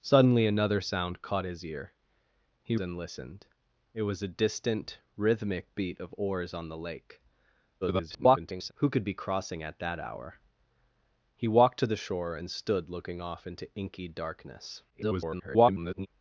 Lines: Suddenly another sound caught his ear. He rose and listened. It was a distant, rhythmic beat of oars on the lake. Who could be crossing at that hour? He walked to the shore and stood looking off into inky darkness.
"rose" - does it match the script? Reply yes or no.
no